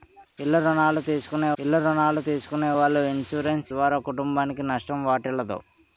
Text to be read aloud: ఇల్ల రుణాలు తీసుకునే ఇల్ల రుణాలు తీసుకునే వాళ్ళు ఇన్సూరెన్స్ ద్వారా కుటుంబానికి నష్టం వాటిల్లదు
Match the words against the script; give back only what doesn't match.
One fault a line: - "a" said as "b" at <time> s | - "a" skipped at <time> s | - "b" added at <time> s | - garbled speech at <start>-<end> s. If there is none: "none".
none